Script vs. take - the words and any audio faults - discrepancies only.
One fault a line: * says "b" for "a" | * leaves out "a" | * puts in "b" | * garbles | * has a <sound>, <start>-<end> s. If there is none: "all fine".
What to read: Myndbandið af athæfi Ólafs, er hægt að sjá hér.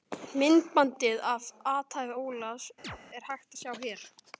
* has a chirp, 2.8-3.0 s